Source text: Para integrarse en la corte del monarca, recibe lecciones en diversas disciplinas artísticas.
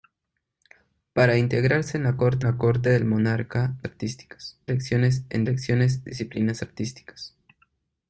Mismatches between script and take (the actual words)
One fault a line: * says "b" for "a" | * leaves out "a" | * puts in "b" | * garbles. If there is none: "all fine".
* puts in "la corte"
* says "artísticas" for "recibe"
* says "lecciones" for "diversas"